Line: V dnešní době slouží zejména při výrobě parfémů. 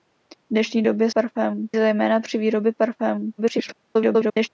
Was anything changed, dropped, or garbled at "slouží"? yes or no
yes